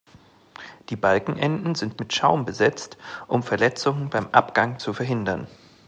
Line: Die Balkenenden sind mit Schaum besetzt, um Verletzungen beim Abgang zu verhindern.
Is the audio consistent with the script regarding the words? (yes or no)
yes